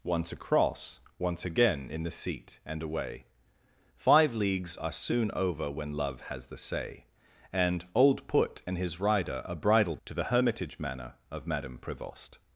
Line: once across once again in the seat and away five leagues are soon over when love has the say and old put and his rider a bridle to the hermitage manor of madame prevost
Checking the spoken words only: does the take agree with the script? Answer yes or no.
yes